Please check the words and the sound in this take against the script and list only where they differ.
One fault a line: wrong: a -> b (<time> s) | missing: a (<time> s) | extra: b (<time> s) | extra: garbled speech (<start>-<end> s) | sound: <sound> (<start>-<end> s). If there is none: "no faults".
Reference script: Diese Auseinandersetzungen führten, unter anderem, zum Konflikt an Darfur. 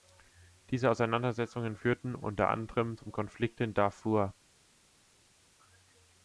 wrong: an -> in (3.6 s)